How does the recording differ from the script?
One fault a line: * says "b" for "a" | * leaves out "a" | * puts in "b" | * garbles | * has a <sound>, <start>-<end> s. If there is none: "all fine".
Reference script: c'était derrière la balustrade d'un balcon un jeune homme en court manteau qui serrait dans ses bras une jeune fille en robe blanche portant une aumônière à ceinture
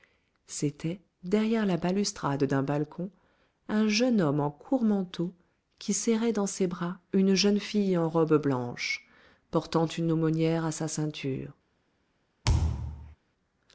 * puts in "sa"
* has a thud, 12.4-13.2 s